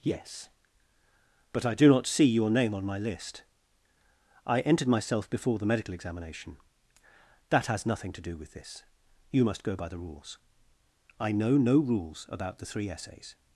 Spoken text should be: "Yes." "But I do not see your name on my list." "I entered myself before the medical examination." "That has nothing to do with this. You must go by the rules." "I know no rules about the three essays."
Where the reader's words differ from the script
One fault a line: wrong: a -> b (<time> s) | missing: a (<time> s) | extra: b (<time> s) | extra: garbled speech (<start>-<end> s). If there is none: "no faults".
no faults